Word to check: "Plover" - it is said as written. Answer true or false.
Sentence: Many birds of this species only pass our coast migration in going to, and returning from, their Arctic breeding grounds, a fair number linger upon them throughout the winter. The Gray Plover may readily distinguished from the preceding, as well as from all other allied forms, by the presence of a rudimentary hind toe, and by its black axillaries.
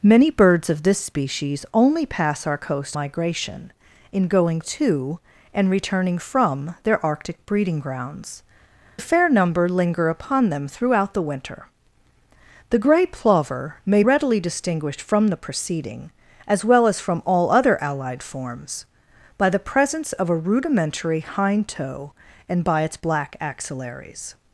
true